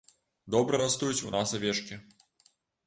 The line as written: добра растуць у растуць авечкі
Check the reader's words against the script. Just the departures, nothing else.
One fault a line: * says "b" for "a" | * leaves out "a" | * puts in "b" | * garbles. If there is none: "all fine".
* says "нас" for "растуць"